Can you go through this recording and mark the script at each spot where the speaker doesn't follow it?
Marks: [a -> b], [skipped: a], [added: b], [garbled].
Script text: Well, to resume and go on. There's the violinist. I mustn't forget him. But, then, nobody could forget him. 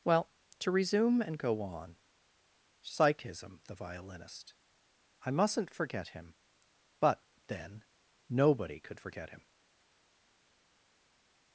Well, to resume and go on. [There's -> Psychism] the violinist. I mustn't forget him. But, then, nobody could forget him.